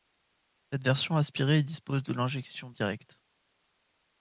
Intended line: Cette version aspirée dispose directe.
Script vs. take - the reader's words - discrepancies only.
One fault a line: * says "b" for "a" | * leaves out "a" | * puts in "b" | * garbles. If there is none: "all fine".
* puts in "de l'injection"